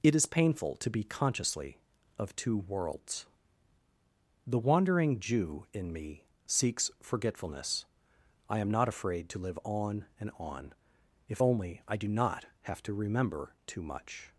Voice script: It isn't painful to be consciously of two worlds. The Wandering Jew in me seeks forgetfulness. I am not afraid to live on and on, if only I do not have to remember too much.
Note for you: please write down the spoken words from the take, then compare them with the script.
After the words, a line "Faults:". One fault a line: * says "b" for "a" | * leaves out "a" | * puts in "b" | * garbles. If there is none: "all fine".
It is painful to be consciously of two worlds. The Wandering Jew in me seeks forgetfulness. I am not afraid to live on and on, if only I do not have to remember too much.
Faults:
* says "is" for "isn't"